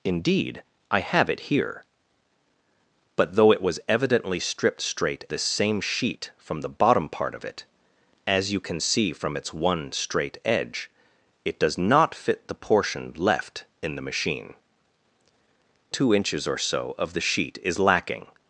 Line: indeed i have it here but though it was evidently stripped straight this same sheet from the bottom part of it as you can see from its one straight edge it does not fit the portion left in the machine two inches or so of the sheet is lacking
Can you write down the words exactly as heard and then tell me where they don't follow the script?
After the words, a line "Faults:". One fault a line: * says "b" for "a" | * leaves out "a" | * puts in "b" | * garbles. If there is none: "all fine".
indeed i have it here but though it was evidently stripped straight this same sheet from the bottom part of it as you can see from its one straight edge it does not fit the portion left in the machine two inches or so of the sheet is lacking
Faults:
all fine